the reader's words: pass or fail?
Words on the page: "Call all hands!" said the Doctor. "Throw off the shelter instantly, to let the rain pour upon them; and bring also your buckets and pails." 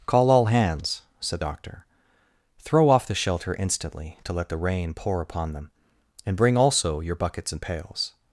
fail